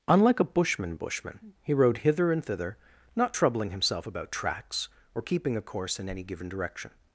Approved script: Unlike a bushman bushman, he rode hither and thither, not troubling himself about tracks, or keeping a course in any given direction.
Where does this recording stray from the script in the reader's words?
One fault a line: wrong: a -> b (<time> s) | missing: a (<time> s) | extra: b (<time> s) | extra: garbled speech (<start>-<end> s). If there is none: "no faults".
no faults